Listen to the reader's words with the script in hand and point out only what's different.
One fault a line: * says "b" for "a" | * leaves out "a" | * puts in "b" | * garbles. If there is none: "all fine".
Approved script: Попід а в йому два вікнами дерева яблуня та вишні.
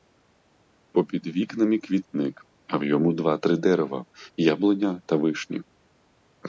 * puts in "вікнами квітник"
* says "три" for "вікнами"